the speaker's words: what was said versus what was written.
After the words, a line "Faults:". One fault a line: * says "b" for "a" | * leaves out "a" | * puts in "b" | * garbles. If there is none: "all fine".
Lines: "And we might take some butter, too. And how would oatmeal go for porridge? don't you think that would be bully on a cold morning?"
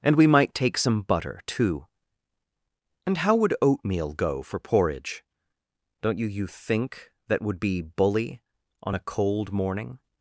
"And we might take some butter, too. And how would oatmeal go for porridge? don't you you think that would be bully on a cold morning?"
Faults:
* puts in "you"